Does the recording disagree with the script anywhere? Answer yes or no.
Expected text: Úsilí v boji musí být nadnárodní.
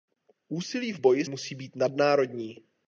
no